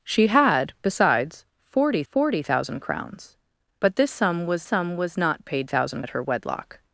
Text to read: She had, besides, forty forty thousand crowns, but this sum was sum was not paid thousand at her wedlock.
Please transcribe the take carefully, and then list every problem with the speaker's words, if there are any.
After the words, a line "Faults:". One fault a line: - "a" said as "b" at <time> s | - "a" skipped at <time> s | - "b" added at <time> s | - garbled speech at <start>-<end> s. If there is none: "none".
She had, besides, forty forty thousand crowns, but this sum was sum was not paid thousand at her wedlock.
Faults:
none